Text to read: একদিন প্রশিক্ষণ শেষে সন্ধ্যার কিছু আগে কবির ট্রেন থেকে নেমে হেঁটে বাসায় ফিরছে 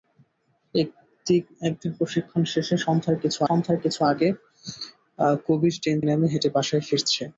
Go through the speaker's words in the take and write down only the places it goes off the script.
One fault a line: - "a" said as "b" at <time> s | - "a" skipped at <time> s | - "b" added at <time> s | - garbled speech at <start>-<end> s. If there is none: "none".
- "সন্ধ্যার কিছু" added at 3.5 s
- "থেকে" skipped at 6.0 s